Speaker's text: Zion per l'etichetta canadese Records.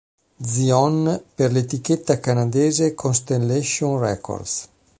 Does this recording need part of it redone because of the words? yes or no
yes